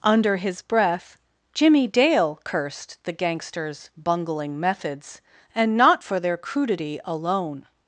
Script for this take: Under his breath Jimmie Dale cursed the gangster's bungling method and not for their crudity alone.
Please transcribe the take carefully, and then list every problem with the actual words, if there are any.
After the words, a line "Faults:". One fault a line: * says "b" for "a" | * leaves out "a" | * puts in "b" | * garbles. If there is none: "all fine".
Under his breath Jimmie Dale cursed the gangster's bungling methods and not for their crudity alone.
Faults:
* says "methods" for "method"